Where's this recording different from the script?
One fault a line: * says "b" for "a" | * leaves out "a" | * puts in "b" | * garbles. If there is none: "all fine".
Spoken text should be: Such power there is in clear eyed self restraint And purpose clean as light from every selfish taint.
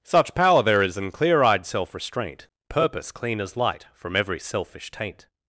* leaves out "And"